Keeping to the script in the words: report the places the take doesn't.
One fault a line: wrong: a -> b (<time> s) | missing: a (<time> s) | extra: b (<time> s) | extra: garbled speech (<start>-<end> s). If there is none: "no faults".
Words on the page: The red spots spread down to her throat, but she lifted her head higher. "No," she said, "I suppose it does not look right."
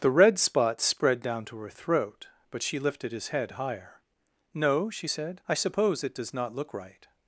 wrong: her -> his (3.1 s)